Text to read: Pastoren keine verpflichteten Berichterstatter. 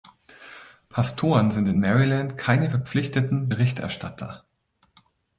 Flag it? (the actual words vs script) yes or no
yes